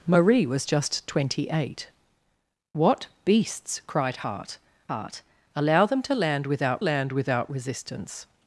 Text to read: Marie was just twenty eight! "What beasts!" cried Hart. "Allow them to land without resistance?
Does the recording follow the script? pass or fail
fail